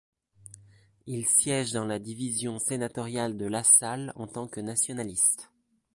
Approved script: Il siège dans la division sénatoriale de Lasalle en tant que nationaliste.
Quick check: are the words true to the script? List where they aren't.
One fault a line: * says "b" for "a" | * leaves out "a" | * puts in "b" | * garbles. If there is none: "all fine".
all fine